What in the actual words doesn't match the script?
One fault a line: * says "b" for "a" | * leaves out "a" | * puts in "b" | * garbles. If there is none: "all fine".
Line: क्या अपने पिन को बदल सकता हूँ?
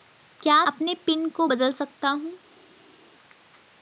all fine